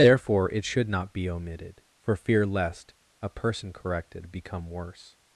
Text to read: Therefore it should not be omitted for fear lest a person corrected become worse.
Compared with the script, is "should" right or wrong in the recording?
right